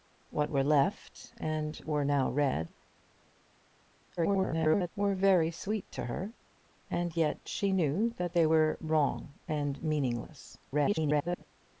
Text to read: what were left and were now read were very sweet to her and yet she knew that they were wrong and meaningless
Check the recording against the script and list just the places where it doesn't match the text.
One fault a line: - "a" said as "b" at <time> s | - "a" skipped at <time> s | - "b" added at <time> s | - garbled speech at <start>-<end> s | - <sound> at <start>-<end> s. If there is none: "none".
- garbled speech at 4.2-4.9 s
- garbled speech at 10.7-11.4 s